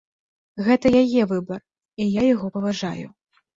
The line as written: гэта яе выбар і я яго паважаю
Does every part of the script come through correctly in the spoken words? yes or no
yes